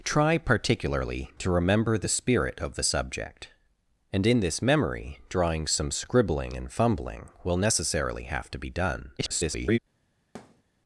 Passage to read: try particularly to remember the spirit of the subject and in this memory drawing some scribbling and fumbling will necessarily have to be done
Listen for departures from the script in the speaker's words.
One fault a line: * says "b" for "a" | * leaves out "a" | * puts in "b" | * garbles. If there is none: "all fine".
* garbles